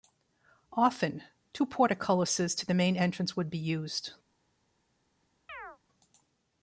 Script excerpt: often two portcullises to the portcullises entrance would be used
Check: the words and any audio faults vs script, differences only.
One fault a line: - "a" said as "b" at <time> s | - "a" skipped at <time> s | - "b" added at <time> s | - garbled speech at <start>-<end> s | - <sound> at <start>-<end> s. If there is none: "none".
- "portcullises" said as "main" at 2.7 s
- chirp at 5.5-5.8 s